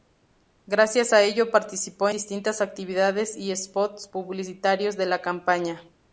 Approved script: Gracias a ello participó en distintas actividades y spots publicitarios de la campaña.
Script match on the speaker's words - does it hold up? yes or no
no